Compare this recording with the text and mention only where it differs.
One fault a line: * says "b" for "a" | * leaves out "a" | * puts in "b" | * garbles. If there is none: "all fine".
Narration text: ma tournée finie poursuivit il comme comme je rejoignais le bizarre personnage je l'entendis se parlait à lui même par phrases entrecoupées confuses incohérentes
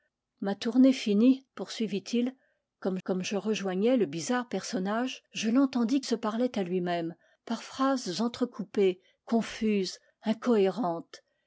all fine